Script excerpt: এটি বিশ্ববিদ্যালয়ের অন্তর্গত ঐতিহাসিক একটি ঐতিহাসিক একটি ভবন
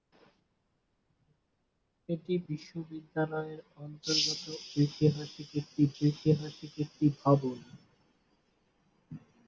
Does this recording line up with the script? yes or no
yes